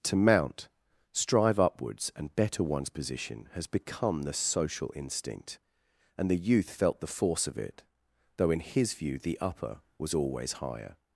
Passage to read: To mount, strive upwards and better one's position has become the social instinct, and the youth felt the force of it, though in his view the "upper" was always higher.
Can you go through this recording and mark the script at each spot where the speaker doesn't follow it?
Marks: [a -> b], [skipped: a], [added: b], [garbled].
To mount, strive upwards and better one's position has become the social instinct, and the youth felt the force of it, though in his view the "upper" was always higher.